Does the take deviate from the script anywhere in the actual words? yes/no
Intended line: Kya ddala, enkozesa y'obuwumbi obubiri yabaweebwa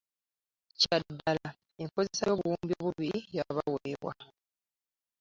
no